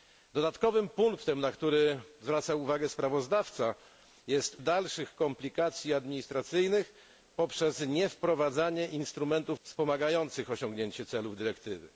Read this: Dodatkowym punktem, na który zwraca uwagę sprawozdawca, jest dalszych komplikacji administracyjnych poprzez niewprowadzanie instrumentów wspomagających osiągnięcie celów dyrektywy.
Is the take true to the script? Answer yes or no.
yes